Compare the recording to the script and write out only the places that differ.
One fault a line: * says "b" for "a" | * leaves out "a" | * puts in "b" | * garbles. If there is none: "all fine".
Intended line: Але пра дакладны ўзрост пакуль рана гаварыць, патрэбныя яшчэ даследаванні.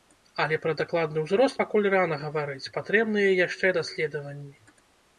all fine